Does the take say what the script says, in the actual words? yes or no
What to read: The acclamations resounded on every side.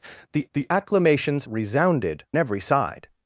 no